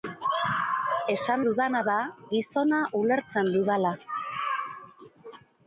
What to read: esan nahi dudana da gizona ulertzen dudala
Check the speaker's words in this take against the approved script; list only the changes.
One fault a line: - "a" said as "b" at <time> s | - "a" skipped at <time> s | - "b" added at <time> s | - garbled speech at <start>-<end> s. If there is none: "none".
- "nahi" skipped at 1.4 s